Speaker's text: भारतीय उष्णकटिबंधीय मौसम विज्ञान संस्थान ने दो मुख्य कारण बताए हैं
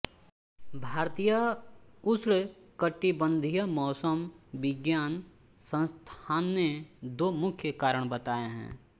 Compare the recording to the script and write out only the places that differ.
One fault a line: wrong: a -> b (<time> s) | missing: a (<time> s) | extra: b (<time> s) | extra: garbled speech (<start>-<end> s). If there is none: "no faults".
no faults